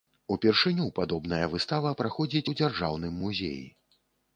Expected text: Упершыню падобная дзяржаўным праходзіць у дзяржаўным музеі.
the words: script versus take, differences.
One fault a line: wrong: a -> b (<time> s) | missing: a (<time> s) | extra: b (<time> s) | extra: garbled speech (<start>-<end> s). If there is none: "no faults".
wrong: дзяржаўным -> выстава (1.5 s)